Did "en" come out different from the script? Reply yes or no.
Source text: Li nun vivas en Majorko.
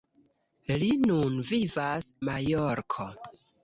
yes